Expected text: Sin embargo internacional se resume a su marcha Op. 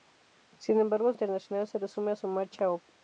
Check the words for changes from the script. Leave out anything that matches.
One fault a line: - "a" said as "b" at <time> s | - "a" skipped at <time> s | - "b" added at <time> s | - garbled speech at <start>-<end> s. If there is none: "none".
none